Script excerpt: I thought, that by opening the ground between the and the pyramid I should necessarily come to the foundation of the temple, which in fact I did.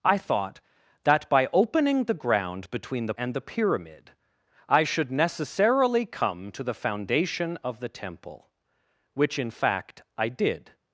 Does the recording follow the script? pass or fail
pass